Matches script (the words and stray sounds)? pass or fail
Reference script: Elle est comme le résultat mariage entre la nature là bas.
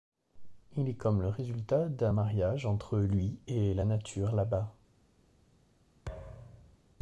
fail